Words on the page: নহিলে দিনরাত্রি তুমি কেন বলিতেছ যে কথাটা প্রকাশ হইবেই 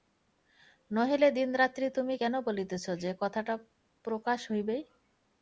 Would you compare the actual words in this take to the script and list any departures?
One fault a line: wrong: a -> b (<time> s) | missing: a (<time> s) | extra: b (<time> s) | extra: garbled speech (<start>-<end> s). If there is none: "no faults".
no faults